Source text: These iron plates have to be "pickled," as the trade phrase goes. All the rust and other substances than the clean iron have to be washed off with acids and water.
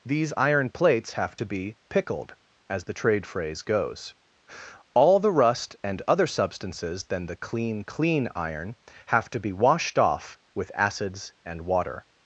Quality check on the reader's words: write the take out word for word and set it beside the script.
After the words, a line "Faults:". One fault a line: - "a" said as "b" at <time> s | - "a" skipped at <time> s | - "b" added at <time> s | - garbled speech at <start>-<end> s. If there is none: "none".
These iron plates have to be "pickled," as the trade phrase goes. All the rust and other substances than the clean clean iron have to be washed off with acids and water.
Faults:
- "clean" added at 7.8 s